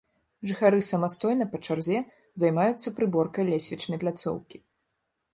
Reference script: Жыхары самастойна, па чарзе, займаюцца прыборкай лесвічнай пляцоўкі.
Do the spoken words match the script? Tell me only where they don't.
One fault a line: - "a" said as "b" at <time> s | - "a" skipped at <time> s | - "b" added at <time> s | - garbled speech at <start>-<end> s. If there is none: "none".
none